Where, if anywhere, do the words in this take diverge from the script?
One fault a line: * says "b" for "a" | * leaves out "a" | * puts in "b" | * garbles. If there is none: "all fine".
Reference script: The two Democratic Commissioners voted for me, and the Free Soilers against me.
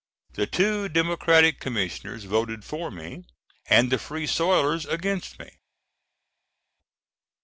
all fine